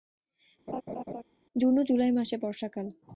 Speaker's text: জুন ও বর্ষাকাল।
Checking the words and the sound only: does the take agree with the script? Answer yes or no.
no